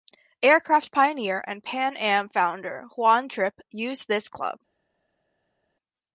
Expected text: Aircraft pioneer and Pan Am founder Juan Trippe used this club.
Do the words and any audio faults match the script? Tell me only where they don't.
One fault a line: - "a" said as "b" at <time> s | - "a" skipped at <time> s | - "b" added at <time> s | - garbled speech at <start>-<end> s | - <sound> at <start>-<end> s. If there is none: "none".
none